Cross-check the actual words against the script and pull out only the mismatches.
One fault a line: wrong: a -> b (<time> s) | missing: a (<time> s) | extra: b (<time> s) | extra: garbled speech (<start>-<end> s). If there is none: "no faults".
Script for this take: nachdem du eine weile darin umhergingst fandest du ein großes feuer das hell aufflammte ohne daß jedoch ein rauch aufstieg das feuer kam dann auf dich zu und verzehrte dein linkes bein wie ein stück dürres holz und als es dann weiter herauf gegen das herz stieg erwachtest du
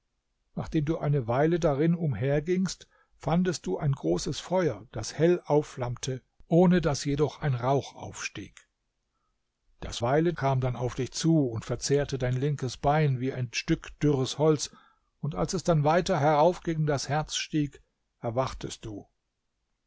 wrong: feuer -> weile (10.0 s)